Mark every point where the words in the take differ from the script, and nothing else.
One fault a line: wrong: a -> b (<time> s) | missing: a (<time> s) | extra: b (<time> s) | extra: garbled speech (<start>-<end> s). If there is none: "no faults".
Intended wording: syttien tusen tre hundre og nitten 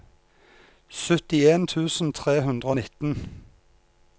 no faults